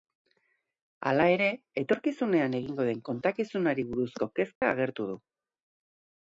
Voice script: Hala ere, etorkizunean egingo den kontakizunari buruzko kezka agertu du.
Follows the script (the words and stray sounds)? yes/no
no